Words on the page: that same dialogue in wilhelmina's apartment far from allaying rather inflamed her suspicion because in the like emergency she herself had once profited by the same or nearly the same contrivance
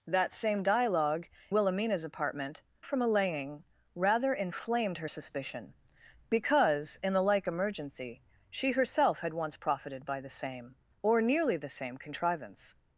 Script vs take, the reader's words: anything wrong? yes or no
yes